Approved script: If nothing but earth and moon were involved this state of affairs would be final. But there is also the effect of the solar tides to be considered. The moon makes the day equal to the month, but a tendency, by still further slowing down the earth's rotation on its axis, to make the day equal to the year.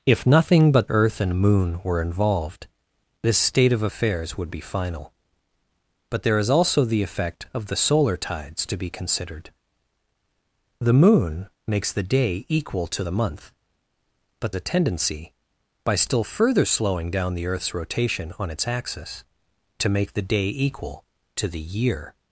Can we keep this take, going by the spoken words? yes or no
yes